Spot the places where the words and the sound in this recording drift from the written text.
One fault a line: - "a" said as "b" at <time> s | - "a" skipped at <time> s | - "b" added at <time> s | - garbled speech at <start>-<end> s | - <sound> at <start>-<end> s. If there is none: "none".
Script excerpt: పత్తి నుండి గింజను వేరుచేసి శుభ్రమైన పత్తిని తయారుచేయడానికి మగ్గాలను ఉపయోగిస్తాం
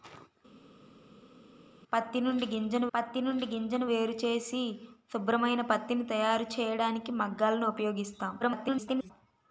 - "పత్తి నుండి గింజను" added at 2.9 s
- garbled speech at 8.4-9.1 s